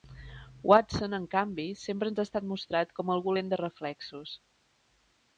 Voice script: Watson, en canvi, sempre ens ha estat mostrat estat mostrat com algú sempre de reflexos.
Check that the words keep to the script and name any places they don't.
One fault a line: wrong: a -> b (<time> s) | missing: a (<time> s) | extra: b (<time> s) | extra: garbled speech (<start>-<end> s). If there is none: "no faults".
missing: estat mostrat (3.0 s)
wrong: sempre -> lent (3.4 s)